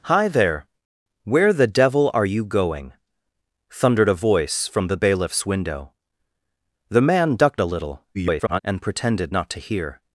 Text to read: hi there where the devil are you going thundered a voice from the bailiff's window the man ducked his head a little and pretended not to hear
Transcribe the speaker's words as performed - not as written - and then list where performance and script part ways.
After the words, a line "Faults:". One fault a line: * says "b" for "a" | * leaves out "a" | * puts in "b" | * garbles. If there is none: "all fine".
hi there where the devil are you going thundered a voice from the bailiff's window the man ducked a little [garbled] and pretended not to hear
Faults:
* leaves out "his head"
* garbles